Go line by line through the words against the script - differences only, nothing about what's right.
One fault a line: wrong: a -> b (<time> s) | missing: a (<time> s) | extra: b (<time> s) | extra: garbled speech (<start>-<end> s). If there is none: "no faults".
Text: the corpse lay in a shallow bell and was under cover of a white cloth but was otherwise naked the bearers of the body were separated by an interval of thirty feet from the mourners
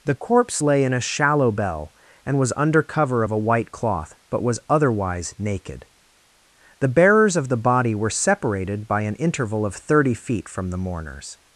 no faults